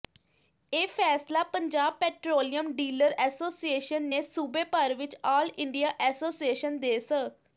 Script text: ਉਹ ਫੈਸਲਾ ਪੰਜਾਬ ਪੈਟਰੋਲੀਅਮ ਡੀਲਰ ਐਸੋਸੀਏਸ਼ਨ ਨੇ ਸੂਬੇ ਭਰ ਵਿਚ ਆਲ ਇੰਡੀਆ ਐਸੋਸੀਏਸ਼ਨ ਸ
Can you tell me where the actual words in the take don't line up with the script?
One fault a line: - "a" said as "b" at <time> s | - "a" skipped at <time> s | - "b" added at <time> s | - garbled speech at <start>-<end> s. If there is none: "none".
- "ਉਹ" said as "ਇਹ" at 0.7 s
- "ਦੇ" added at 6.8 s